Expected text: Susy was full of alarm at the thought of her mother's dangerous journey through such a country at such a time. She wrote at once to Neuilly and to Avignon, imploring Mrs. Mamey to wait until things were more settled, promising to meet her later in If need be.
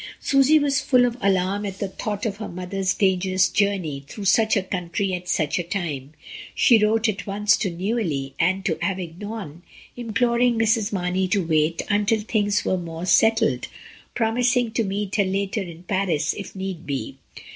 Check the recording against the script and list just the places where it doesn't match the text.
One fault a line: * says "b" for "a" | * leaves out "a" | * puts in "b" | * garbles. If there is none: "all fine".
* puts in "Paris"